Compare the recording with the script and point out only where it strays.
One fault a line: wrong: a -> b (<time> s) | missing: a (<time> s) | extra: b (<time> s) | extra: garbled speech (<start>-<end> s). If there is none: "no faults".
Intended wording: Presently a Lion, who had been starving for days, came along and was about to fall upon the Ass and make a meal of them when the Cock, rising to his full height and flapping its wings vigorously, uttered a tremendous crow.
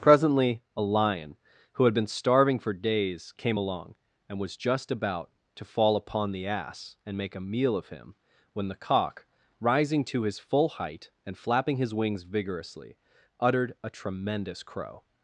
extra: just (4.5 s)
wrong: them -> him (7.9 s)
wrong: its -> his (11.8 s)